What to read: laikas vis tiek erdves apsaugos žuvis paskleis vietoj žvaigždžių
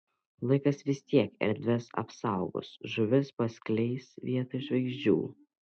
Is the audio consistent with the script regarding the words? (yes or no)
yes